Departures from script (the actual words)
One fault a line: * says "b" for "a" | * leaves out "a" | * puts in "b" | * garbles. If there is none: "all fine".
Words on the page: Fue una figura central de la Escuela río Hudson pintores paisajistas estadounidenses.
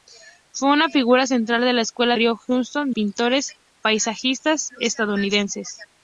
all fine